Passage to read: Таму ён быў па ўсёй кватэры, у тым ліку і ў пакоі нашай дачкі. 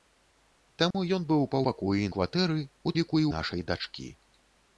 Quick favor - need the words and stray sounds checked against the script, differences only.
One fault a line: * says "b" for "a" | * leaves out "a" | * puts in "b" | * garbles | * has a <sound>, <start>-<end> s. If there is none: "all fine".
* has a dropout, 0.9-0.9 s
* says "пакоі" for "ўсёй"
* leaves out "тым"
* leaves out "ў пакоі"